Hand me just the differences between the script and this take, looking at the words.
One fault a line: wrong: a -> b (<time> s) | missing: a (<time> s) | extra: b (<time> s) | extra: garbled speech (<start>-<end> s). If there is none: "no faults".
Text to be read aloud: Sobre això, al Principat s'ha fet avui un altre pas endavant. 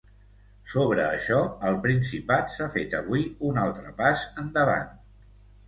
no faults